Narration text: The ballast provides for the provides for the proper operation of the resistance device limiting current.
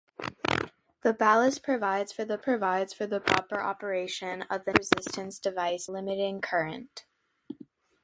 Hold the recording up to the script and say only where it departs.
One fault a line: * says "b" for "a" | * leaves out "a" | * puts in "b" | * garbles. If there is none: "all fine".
all fine